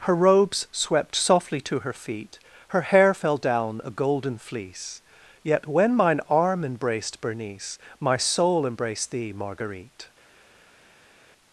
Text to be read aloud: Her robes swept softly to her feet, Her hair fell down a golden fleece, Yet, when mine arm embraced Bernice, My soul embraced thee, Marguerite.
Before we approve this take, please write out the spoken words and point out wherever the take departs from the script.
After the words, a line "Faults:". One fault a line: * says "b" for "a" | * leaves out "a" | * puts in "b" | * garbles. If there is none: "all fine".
Her robes swept softly to her feet, Her hair fell down a golden fleece, Yet, when mine arm embraced Bernice, My soul embraced thee, Marguerite.
Faults:
all fine